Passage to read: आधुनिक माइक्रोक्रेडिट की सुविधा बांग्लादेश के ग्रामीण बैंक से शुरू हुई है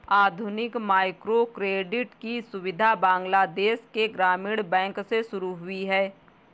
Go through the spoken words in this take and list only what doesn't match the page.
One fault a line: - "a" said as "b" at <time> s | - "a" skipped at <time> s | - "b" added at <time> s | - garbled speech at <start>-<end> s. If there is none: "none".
none